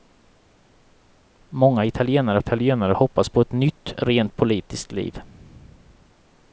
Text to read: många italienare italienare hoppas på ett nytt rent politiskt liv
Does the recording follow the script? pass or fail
pass